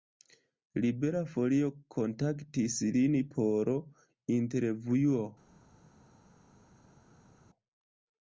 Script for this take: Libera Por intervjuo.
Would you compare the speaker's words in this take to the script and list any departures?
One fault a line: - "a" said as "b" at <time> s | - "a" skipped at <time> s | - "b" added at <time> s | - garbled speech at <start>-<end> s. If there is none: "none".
- "Folio kontaktis lin" added at 1.3 s